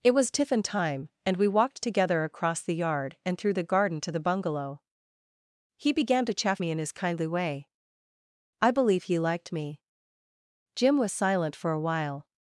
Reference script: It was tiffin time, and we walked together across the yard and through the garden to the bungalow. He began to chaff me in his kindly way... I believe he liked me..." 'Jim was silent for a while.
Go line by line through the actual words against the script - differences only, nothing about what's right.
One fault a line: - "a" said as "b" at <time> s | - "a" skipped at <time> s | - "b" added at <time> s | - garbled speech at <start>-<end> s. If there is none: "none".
none